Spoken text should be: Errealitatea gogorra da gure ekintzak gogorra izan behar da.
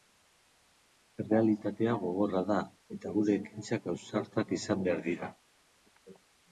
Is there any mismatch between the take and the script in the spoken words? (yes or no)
yes